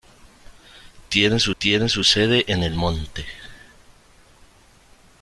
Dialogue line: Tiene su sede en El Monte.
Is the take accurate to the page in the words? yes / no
no